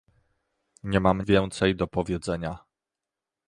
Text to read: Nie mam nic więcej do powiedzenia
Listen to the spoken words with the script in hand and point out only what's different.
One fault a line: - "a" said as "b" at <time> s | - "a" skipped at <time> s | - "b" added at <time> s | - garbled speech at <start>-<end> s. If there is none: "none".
- "nic" skipped at 1.2 s